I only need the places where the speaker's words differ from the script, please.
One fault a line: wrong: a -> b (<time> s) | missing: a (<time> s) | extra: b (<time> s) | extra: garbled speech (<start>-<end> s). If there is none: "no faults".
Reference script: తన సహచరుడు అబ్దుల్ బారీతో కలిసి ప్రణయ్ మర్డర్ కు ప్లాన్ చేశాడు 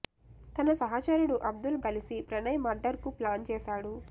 missing: బారీతో (1.8 s)